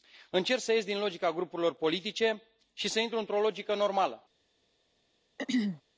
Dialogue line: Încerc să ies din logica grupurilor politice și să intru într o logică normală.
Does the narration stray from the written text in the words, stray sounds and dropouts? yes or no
yes